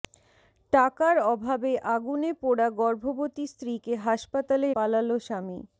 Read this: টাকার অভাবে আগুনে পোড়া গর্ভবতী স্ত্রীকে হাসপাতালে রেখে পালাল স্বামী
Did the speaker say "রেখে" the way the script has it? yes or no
no